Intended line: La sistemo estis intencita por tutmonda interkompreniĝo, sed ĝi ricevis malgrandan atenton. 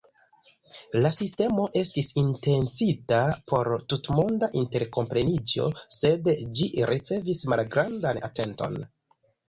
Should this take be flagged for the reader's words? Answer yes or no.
no